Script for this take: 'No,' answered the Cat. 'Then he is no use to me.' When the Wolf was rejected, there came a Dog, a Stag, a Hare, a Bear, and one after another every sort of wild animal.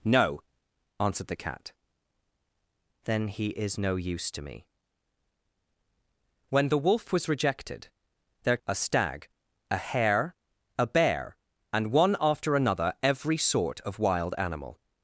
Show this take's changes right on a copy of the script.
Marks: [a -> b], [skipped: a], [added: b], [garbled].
'No,' answered the Cat. 'Then he is no use to me.' When the Wolf was rejected, there [skipped: came a Dog,] a Stag, a Hare, a Bear, and one after another every sort of wild animal.